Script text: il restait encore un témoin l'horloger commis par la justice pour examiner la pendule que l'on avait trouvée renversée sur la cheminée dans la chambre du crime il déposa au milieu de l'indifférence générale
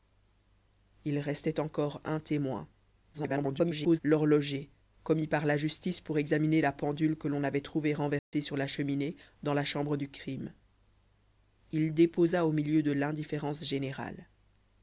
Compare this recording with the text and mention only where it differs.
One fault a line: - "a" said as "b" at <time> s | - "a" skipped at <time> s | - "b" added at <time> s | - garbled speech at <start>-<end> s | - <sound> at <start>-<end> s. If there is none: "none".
- garbled speech at 3.1-4.0 s
- dropout at 8.2-8.3 s